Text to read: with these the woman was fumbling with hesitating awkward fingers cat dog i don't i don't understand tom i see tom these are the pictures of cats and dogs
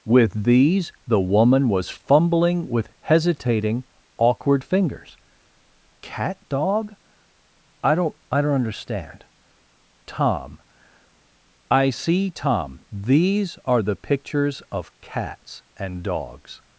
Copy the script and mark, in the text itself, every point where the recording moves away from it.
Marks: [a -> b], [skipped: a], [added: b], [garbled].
with these the woman was fumbling with hesitating awkward fingers cat dog i don't i don't understand tom i see tom these are the pictures of cats and dogs